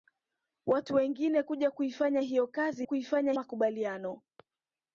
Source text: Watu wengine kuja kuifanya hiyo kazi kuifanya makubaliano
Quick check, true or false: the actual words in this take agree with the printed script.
true